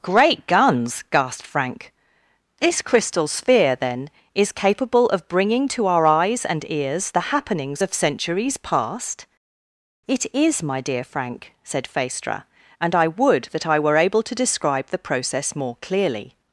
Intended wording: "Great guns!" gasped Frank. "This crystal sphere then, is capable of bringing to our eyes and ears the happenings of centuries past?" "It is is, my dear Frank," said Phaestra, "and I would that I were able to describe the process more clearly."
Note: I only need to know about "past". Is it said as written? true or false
true